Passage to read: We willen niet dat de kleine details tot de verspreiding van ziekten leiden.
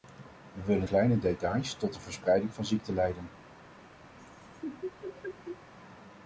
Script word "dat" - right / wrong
wrong